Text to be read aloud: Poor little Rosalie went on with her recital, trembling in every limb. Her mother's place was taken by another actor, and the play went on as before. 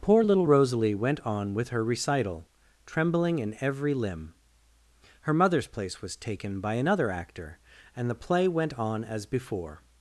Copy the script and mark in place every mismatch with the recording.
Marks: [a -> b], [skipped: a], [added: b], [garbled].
Poor little Rosalie went on with her recital, trembling in every limb. Her mother's place was taken by another actor, and the play went on as before.